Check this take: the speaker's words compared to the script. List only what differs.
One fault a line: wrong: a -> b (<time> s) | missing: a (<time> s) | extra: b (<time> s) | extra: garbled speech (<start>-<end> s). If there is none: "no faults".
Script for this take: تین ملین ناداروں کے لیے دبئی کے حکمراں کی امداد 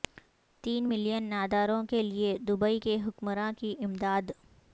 no faults